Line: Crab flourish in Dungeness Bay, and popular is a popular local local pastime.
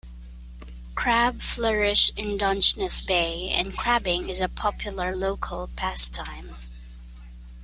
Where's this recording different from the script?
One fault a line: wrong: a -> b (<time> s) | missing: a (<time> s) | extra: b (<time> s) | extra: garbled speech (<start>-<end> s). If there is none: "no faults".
wrong: popular -> crabbing (3.8 s)
missing: local (5.7 s)